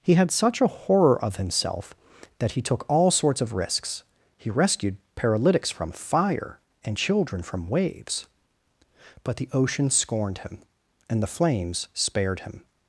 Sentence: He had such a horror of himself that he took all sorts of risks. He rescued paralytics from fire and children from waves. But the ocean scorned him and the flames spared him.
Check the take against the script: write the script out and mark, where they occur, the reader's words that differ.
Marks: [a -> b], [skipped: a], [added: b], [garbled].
He had such a horror of himself that he took all sorts of risks. He rescued paralytics from fire and children from waves. But the ocean scorned him and the flames spared him.